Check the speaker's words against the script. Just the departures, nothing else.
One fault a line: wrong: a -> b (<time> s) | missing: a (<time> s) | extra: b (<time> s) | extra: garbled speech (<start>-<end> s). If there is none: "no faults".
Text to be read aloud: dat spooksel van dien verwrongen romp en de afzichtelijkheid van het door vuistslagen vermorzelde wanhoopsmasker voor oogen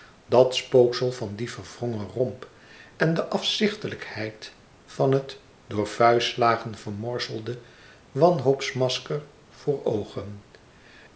no faults